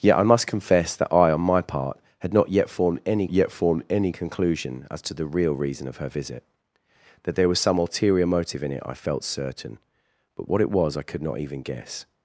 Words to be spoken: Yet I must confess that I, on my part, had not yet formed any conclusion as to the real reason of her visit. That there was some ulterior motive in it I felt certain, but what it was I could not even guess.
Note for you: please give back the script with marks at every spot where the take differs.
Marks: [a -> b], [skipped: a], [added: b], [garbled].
Yet I must confess that I, on my part, had not yet formed any [added: yet formed any] conclusion as to the real reason of her visit. That there was some ulterior motive in it I felt certain, but what it was I could not even guess.